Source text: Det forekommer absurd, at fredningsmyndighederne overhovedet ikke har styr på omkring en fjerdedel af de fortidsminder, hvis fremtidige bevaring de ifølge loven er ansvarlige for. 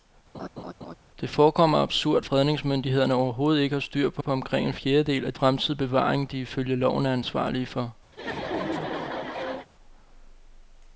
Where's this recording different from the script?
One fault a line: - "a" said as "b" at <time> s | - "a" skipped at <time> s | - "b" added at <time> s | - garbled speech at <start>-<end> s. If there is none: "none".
- "at" skipped at 2.2 s
- "på" added at 4.2 s
- "de fortidsminder hvis" skipped at 5.3 s